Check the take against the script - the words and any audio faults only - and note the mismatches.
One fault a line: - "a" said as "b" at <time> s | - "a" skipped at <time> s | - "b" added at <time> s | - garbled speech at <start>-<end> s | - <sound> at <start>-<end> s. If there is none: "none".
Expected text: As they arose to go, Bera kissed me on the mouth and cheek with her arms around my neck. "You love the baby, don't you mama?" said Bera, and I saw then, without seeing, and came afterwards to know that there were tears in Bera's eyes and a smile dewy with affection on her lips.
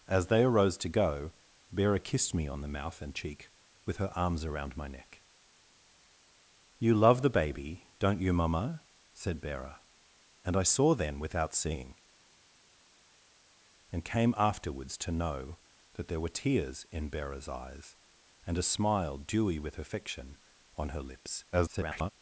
- garbled speech at 21.5-22.1 s